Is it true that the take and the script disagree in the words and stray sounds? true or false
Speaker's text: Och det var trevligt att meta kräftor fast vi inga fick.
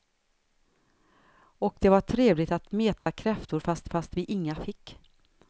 true